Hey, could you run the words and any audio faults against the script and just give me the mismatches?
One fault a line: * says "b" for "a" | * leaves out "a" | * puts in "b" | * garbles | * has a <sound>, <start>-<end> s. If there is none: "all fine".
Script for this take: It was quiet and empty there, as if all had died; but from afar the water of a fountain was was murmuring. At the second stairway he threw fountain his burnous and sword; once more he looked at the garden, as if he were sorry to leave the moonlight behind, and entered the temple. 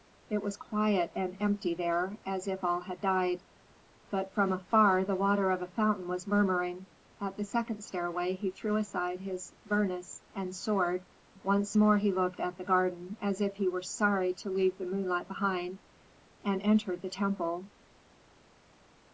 * leaves out "was"
* says "aside" for "fountain"